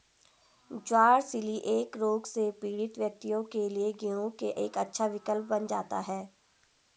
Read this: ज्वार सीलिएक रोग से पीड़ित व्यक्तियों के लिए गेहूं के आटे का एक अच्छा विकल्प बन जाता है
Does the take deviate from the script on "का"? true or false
true